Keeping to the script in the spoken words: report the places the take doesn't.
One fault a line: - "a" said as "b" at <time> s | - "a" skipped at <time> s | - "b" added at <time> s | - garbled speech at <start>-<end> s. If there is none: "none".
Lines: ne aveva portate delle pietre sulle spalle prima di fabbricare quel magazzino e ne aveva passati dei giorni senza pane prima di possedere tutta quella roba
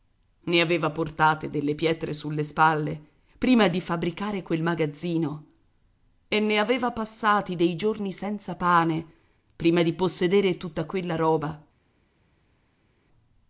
none